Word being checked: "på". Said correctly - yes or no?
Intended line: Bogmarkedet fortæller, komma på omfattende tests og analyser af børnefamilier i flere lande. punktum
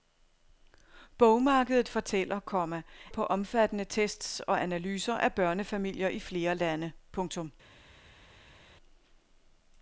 yes